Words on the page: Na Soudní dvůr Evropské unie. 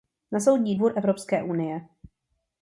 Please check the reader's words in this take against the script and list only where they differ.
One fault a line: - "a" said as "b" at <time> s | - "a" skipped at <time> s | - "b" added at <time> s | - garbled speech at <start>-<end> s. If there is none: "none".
none